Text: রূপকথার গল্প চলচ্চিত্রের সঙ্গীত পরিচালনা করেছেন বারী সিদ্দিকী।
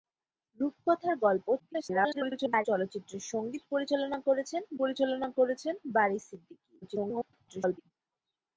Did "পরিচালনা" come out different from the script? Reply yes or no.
no